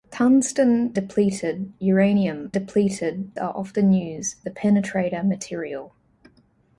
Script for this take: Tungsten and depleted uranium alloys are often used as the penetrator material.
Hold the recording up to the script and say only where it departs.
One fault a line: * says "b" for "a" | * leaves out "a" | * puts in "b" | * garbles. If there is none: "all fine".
* leaves out "and"
* says "depleted" for "alloys"
* leaves out "as"